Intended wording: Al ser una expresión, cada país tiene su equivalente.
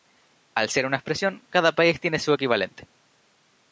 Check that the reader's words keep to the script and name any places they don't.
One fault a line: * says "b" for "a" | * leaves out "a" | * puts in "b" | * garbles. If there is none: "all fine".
all fine